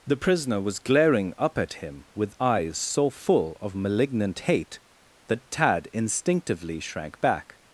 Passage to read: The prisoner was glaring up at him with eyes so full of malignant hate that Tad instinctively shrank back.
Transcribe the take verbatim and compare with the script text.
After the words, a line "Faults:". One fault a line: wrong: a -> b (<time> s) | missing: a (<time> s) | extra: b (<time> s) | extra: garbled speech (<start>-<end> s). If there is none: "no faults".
The prisoner was glaring up at him with eyes so full of malignant hate that Tad instinctively shrank back.
Faults:
no faults